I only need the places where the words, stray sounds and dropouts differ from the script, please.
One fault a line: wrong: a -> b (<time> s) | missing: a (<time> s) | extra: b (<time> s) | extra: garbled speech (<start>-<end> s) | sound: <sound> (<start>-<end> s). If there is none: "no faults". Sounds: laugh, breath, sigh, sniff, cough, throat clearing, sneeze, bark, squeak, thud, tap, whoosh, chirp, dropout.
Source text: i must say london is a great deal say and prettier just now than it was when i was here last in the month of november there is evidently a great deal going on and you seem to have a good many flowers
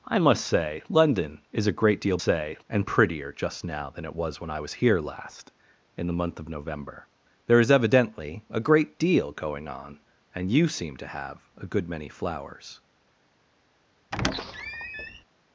sound: squeak (14.1-15.2 s)